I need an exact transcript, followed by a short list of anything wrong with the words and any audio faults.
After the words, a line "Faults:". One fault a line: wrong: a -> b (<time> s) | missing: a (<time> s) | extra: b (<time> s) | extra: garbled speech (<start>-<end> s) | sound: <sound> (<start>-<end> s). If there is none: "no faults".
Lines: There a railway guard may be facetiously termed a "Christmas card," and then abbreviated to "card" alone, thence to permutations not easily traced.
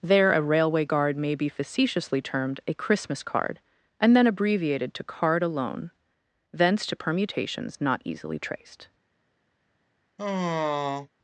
There a railway guard may be facetiously termed a "Christmas card," and then abbreviated to "card" alone, thence to permutations not easily traced.
Faults:
sound: sigh (10.2-11.1 s)